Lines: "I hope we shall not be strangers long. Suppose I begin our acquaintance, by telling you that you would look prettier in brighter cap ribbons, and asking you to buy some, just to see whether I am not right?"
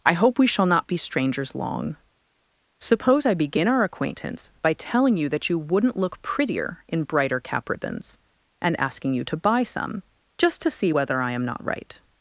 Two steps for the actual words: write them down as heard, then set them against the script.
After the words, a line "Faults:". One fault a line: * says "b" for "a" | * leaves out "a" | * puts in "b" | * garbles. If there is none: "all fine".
"I hope we shall not be strangers long. Suppose I begin our acquaintance, by telling you that you wouldn't look prettier in brighter cap ribbons, and asking you to buy some, just to see whether I am not right?"
Faults:
* says "wouldn't" for "would"